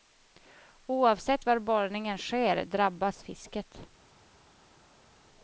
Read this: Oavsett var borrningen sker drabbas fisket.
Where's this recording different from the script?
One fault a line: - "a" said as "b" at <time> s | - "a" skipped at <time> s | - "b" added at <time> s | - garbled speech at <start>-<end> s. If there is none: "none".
none